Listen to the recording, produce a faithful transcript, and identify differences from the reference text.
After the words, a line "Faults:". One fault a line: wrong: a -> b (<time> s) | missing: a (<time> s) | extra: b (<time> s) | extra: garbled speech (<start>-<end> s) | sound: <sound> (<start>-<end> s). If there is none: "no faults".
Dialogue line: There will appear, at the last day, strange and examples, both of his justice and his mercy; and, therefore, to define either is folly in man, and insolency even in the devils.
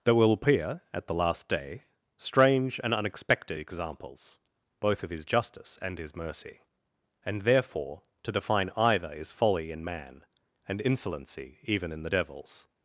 There will appear, at the last day, strange and unexpected examples, both of his justice and his mercy; and, therefore, to define either is folly in man, and insolency even in the devils.
Faults:
extra: unexpected (2.9 s)